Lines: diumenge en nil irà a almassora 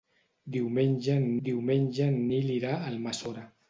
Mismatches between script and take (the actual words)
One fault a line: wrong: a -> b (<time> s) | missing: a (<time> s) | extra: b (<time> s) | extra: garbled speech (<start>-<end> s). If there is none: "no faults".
extra: diumenge en (1.5 s)